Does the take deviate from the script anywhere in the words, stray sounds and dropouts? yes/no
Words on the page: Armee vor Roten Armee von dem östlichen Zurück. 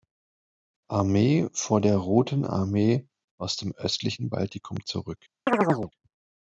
yes